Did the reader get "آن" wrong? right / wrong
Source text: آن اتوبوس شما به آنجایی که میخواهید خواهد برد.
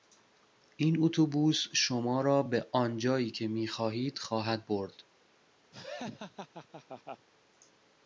wrong